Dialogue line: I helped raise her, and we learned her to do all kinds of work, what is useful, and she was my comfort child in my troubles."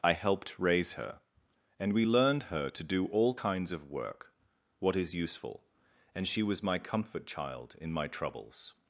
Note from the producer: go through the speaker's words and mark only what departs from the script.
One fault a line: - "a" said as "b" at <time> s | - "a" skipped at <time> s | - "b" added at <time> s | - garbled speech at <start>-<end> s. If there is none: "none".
none